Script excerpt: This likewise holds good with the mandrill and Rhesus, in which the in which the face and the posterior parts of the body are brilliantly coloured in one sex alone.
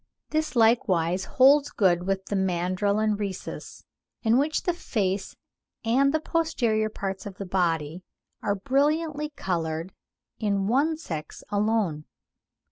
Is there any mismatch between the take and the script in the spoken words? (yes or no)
yes